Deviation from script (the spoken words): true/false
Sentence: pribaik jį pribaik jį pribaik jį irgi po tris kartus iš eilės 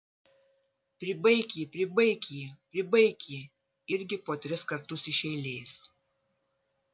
false